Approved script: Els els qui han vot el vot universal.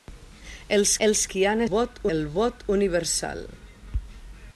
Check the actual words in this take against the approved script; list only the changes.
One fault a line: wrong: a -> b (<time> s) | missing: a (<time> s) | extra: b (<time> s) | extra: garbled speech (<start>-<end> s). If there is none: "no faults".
no faults